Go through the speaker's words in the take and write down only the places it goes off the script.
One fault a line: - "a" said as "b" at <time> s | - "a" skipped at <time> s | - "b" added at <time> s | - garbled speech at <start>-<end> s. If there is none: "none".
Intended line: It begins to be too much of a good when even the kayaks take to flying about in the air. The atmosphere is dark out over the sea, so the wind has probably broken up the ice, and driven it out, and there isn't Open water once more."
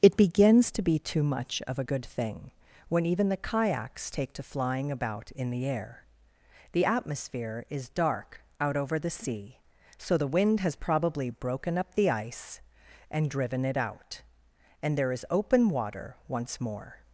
- "thing" added at 2.0 s
- "isn't" said as "is" at 15.1 s